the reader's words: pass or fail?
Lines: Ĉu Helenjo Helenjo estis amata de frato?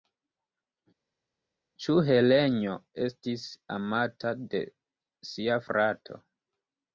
fail